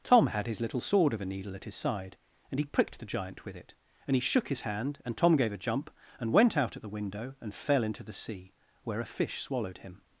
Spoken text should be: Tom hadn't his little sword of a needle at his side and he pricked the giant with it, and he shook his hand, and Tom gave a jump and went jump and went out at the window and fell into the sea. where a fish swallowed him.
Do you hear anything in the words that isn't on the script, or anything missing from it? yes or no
yes